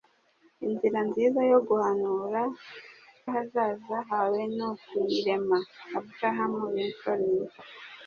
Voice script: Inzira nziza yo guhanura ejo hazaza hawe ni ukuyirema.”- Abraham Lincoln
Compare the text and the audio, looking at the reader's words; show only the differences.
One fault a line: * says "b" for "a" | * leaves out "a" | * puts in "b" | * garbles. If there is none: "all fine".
* leaves out "ejo"